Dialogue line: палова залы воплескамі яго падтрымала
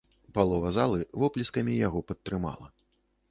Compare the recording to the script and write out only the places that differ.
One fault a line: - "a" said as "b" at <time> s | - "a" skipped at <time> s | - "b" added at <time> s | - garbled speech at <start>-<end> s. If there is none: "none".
none